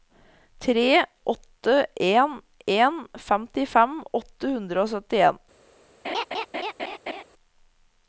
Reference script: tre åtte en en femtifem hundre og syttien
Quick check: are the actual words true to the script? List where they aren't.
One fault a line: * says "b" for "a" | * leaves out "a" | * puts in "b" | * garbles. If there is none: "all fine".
* puts in "åtte"